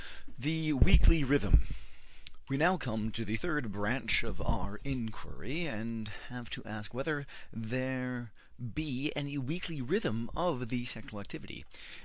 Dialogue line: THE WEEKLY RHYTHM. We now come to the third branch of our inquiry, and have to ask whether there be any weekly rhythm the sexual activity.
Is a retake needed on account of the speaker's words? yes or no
yes